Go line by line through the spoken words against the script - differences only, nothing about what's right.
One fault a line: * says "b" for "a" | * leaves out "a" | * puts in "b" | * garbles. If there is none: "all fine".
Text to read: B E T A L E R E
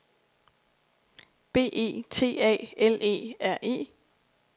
all fine